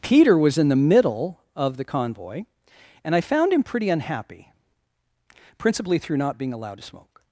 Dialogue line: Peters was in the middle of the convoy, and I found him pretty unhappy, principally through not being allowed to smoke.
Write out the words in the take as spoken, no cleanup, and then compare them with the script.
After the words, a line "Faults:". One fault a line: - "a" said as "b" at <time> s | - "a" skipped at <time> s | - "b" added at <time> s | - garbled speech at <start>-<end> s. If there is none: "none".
Peter was in the middle of the convoy, and I found him pretty unhappy, principally through not being allowed to smoke.
Faults:
- "Peters" said as "Peter" at 0.0 s